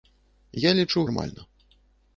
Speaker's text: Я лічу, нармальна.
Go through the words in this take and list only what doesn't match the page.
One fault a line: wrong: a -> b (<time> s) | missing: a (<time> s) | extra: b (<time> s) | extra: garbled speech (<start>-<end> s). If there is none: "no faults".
no faults